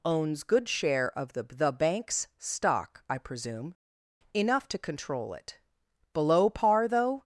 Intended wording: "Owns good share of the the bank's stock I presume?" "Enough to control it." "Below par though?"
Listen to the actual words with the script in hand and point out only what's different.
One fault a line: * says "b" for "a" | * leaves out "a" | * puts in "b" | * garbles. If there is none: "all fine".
all fine